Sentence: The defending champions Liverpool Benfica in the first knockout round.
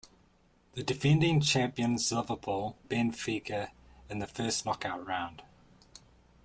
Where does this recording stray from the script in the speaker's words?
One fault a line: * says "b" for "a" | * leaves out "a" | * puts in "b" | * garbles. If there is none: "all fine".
all fine